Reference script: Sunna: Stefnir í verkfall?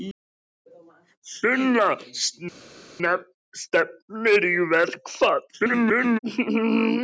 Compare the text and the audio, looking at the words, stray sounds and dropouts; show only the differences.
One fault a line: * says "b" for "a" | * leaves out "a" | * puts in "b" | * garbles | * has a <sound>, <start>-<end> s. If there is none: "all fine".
* garbles